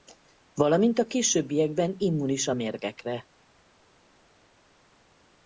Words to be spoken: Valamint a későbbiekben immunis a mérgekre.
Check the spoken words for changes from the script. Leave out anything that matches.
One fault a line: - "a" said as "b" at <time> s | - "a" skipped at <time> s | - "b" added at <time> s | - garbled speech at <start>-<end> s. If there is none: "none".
none